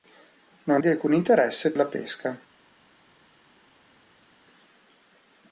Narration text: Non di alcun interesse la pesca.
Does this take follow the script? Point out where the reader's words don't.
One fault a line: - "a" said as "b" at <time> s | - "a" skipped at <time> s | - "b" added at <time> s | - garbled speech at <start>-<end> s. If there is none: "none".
none